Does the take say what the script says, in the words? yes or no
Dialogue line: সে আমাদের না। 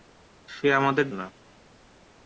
yes